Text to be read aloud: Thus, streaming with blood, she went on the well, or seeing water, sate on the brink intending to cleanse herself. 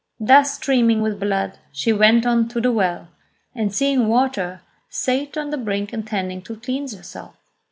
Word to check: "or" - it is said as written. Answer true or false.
false